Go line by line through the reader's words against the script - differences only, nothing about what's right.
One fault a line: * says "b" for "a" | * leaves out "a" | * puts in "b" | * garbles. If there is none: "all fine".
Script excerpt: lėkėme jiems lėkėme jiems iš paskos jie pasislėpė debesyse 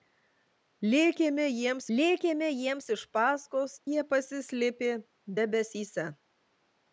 all fine